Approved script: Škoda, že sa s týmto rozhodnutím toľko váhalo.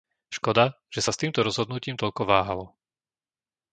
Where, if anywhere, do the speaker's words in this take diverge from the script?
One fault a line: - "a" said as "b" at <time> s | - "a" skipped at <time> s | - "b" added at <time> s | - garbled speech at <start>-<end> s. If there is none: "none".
none